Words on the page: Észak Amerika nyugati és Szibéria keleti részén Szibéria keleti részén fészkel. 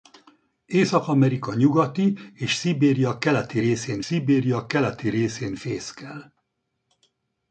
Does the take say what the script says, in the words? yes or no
yes